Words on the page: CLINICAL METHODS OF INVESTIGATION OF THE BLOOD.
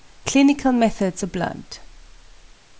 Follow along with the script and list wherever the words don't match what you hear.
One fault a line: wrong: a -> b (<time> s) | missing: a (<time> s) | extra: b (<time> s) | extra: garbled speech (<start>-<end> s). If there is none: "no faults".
missing: OF INVESTIGATION OF (1.2 s)